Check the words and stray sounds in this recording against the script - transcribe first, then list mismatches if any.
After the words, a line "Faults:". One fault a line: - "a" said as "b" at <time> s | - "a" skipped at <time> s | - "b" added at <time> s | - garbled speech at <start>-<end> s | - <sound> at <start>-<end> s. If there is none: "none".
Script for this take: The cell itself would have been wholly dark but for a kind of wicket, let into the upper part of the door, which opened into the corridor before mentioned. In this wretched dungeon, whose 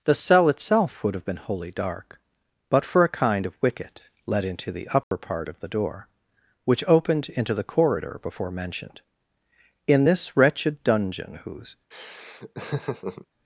The cell itself would have been wholly dark but for a kind of wicket, let into the upper part of the door, which opened into the corridor before mentioned. In this wretched dungeon, whose
Faults:
- dropout at 5.0-5.1 s
- laugh at 11.9-13.3 s